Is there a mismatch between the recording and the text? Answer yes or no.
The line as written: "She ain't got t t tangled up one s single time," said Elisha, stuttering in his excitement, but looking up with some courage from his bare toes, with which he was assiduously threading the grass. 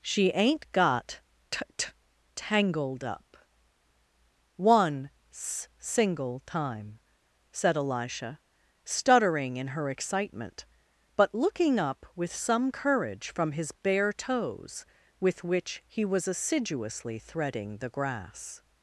yes